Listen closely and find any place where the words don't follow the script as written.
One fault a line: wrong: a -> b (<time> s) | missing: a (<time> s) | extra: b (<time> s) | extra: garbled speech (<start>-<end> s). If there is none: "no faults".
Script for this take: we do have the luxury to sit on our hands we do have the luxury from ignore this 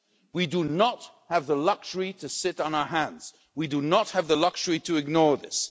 extra: not (0.6 s)
extra: not (3.8 s)
wrong: from -> to (4.8 s)